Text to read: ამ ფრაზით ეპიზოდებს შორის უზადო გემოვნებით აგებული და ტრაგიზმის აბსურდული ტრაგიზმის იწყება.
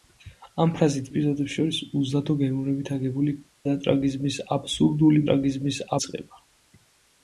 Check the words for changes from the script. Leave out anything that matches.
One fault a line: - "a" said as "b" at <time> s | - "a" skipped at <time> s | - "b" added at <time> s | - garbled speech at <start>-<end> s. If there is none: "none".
none